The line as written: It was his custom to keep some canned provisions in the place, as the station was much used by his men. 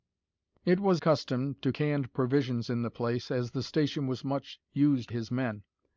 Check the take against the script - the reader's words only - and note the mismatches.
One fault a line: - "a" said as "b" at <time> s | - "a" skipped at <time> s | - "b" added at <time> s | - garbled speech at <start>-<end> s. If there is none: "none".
- "his" skipped at 1.0 s
- "keep some" skipped at 1.7 s
- "by" skipped at 5.1 s